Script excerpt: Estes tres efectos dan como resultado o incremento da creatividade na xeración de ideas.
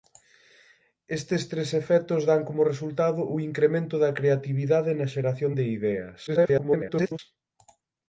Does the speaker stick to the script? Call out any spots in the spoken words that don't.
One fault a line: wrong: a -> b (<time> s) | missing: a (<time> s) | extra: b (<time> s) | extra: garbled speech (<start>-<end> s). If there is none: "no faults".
extra: garbled speech (6.3-7.2 s)